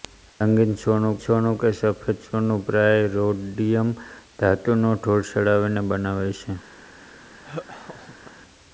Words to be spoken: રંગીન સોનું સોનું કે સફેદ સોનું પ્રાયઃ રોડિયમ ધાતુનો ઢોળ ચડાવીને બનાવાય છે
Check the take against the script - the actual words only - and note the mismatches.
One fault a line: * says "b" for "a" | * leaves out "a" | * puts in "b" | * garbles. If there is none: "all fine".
all fine